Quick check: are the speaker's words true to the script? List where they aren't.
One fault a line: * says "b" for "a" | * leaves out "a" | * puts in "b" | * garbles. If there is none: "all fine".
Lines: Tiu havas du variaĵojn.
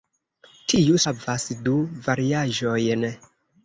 all fine